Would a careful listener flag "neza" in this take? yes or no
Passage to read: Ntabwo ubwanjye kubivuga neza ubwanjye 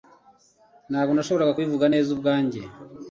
no